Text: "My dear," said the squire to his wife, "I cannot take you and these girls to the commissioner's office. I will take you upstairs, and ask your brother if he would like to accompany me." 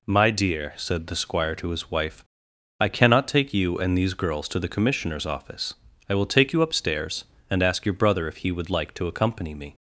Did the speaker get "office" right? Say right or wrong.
right